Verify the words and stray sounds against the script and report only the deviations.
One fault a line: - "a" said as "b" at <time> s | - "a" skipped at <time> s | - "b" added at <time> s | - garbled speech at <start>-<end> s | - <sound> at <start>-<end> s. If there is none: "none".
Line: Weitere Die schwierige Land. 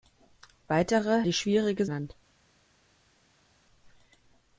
none